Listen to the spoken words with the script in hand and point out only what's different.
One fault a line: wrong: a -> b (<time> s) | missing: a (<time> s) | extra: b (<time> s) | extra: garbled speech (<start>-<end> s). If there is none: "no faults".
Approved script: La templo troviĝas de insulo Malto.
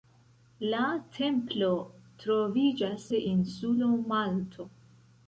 no faults